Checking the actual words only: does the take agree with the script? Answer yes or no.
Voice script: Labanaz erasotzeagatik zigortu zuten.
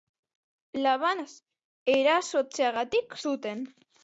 no